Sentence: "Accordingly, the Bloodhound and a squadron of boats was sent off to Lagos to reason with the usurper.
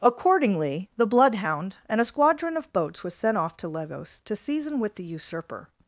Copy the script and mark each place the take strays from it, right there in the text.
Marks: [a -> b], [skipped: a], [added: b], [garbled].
"Accordingly, the Bloodhound and a squadron of boats was sent off to Lagos to [reason -> season] with the usurper.